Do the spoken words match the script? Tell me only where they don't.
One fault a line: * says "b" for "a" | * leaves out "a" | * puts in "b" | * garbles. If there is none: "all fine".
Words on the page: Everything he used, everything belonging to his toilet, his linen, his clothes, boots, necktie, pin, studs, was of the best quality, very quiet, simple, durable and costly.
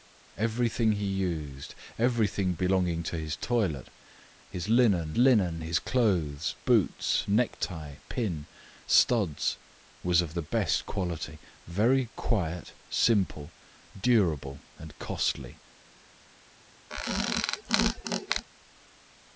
* puts in "linen"